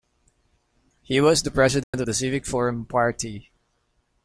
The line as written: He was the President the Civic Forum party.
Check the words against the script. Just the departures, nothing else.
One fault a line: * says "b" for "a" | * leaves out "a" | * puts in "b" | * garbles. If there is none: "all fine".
all fine